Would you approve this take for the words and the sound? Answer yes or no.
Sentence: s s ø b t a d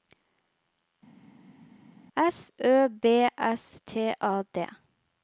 no